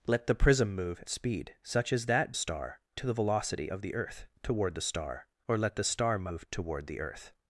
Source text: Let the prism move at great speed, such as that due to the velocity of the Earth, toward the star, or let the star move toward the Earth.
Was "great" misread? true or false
true